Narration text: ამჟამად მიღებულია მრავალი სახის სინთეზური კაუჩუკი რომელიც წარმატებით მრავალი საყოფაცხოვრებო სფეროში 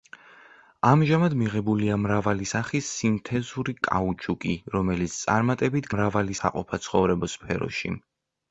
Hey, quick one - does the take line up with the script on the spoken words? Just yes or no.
yes